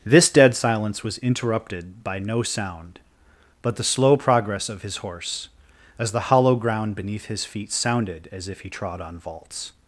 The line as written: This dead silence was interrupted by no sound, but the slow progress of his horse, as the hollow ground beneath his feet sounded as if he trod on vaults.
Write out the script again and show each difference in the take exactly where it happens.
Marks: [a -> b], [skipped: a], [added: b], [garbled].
This dead silence was interrupted by no sound, but the slow progress of his horse, as the hollow ground beneath his feet sounded as if he trod on vaults.